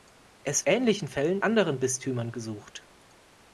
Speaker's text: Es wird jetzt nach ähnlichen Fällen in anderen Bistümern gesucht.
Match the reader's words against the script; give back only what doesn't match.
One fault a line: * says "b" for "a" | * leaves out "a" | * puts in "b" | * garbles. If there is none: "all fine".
* leaves out "wird jetzt nach"
* leaves out "in"